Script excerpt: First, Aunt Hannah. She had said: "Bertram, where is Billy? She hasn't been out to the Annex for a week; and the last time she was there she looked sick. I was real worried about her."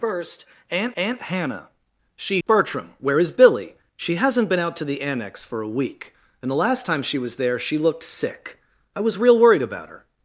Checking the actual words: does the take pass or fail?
fail